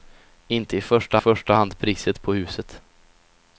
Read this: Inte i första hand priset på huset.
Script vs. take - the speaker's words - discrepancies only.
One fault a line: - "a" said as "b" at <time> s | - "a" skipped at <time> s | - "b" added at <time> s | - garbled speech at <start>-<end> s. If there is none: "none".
- "första" added at 1.2 s